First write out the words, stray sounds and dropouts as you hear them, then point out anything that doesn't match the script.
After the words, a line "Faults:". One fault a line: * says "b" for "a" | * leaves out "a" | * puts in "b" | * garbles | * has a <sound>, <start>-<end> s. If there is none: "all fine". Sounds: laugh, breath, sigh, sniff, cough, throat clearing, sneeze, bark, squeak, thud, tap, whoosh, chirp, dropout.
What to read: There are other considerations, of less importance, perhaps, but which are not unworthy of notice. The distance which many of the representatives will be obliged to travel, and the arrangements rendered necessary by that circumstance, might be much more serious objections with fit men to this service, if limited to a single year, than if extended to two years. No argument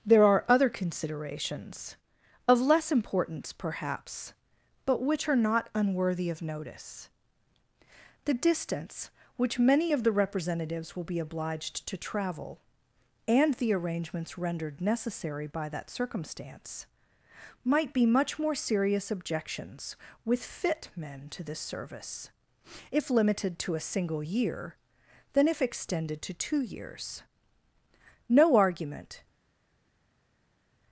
There are other considerations, of less importance, perhaps, but which are not unworthy of notice. The distance which many of the representatives will be obliged to travel, and the arrangements rendered necessary by that circumstance, might be much more serious objections with fit men to this service, if limited to a single year, than if extended to two years. No argument
Faults:
all fine